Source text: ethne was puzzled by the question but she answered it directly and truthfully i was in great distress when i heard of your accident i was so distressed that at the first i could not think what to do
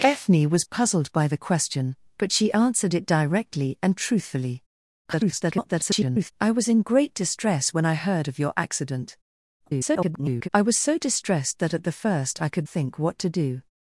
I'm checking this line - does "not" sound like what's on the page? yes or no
no